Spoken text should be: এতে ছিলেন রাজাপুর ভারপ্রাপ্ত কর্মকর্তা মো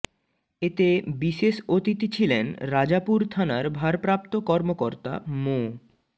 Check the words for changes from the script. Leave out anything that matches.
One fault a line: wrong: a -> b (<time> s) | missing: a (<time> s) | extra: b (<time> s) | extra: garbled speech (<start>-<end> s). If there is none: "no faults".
extra: বিশেষ অতিথি (1.2 s)
extra: থানার (3.3 s)